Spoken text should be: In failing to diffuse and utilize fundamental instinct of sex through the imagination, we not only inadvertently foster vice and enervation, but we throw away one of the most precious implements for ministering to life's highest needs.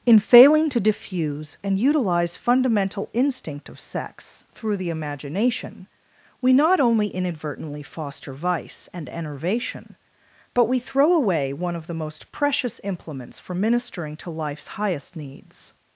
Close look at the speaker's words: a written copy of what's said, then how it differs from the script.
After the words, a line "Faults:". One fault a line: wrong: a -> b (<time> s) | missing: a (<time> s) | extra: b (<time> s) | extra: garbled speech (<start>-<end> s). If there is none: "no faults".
In failing to diffuse and utilize fundamental instinct of sex through the imagination, we not only inadvertently foster vice and enervation, but we throw away one of the most precious implements for ministering to life's highest needs.
Faults:
no faults